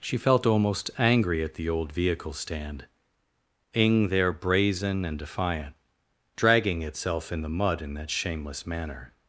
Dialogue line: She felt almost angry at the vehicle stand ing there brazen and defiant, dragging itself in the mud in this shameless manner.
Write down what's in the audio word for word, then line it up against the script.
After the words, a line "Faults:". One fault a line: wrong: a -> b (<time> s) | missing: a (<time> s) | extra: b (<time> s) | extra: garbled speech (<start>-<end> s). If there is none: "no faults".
She felt almost angry at the old vehicle stand ing there brazen and defiant, dragging itself in the mud in that shameless manner.
Faults:
extra: old (1.7 s)
wrong: this -> that (8.0 s)